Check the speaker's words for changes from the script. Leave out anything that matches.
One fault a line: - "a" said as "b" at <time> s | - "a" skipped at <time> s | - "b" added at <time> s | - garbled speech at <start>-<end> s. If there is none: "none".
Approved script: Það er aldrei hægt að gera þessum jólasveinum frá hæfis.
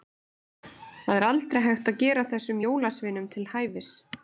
- "frá" said as "til" at 3.4 s